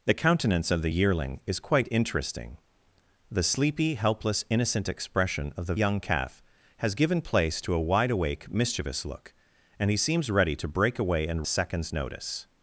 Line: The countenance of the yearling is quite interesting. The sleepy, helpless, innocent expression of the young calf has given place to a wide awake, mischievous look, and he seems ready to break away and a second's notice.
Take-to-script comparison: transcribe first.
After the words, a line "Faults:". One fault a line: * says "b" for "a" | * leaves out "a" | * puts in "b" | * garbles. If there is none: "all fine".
The countenance of the yearling is quite interesting. The sleepy, helpless, innocent expression of the young calf has given place to a wide awake, mischievous look, and he seems ready to break away and a second's notice.
Faults:
all fine